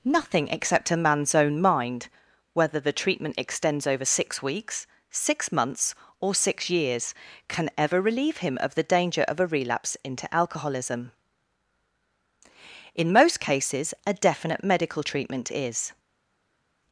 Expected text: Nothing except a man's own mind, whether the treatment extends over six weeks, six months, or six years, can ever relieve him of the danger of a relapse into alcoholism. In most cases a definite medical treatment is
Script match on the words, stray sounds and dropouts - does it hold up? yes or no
yes